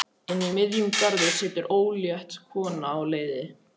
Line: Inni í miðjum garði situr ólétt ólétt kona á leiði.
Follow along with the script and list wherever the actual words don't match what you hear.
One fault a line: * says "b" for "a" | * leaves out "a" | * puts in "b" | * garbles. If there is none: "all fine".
* leaves out "ólétt"